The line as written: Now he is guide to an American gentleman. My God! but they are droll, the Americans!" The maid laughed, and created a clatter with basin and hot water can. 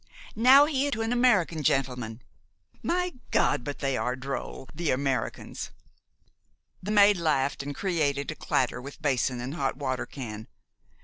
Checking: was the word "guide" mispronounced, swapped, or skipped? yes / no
yes